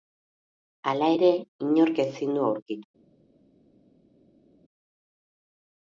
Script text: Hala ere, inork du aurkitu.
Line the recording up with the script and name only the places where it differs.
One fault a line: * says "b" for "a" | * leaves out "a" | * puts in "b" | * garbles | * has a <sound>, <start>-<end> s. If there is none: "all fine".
* puts in "ezin"